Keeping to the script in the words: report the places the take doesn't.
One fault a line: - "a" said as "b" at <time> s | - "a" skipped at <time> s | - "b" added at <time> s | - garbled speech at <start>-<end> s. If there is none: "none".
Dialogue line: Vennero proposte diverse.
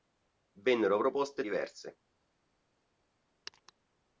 none